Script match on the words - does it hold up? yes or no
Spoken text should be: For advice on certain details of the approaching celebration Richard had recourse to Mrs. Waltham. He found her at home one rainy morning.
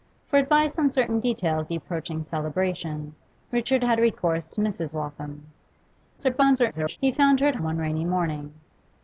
no